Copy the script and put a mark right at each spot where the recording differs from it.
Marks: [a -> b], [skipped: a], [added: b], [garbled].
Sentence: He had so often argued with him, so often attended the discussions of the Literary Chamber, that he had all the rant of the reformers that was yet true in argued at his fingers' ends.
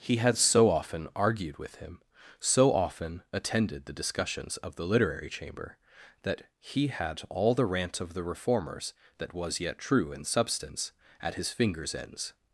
He had so often argued with him, so often attended the discussions of the Literary Chamber, that he had all the rant of the reformers that was yet true in [argued -> substance] at his fingers' ends.